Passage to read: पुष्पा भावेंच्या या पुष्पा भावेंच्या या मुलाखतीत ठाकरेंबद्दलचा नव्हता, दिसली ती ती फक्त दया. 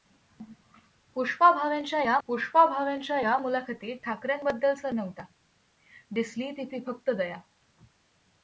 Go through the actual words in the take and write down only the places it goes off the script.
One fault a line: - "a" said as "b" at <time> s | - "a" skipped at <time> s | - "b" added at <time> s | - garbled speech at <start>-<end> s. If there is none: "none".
none